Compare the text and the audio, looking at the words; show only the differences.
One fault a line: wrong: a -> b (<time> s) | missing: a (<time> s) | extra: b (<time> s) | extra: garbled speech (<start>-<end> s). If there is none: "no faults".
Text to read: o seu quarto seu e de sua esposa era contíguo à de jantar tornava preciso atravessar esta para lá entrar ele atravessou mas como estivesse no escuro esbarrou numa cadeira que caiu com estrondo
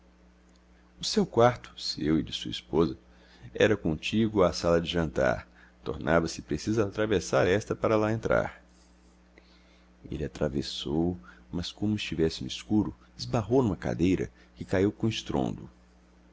extra: sala (4.5 s)
extra: se (6.3 s)